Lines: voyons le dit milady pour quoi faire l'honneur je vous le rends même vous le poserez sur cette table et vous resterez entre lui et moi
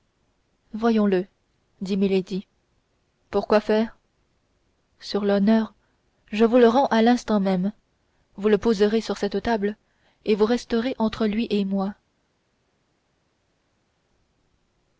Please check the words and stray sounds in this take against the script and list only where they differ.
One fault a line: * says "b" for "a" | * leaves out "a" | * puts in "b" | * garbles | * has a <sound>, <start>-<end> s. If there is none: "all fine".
* puts in "sur"
* puts in "à l'instant"